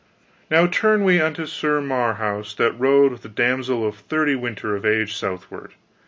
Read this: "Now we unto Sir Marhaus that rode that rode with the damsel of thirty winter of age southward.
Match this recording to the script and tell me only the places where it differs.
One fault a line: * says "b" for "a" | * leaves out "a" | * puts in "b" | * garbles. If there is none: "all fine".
* puts in "turn"
* leaves out "that rode"